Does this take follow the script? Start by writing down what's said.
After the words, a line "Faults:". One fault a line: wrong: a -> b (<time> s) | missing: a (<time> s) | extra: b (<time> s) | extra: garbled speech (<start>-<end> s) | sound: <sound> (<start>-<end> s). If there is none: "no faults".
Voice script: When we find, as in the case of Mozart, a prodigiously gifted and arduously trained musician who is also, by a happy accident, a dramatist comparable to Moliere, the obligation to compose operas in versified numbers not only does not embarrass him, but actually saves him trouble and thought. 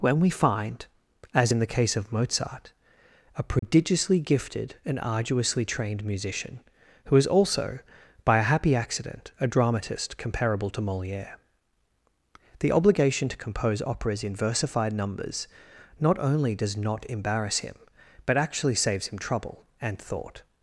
When we find, as in the case of Mozart, a prodigiously gifted and arduously trained musician who is also, by a happy accident, a dramatist comparable to Moliere, the obligation to compose operas in versified numbers not only does not embarrass him, but actually saves him trouble and thought.
Faults:
sound: dropout (3.6-3.6 s)